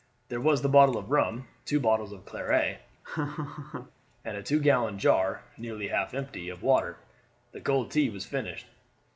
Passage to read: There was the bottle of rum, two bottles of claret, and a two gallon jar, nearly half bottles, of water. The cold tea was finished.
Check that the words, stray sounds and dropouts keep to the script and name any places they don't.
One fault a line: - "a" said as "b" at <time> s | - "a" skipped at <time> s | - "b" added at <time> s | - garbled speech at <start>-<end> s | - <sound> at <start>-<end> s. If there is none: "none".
- laugh at 3.0-3.9 s
- "bottles" said as "empty" at 6.1 s